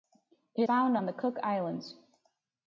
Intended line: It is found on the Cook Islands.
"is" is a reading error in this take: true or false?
true